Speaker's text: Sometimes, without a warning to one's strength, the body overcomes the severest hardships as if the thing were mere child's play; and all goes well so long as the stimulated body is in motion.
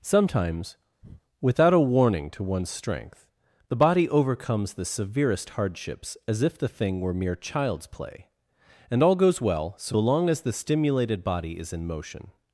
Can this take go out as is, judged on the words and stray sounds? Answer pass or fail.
fail